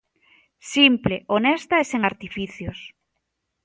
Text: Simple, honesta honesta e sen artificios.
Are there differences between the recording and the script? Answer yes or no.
yes